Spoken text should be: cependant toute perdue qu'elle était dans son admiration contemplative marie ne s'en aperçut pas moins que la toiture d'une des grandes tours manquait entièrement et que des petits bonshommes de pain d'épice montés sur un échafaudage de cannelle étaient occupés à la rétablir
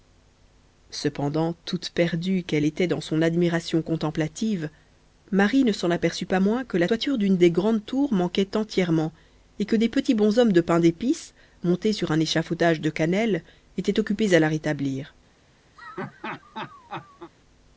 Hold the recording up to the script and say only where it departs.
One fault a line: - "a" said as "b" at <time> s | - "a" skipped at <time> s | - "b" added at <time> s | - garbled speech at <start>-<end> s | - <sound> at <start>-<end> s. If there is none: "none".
- laugh at 15.8-17.3 s